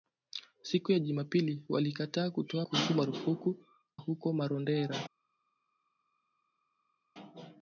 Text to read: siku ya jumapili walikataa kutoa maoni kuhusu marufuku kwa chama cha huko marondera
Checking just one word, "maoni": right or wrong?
wrong